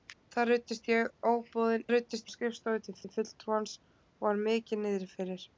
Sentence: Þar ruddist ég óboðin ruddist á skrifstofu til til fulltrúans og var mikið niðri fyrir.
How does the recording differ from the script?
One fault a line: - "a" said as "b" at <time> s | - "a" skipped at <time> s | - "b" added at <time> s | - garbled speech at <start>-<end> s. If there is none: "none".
none